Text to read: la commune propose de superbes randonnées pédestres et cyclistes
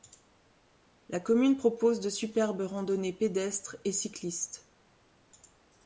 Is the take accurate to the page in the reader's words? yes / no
yes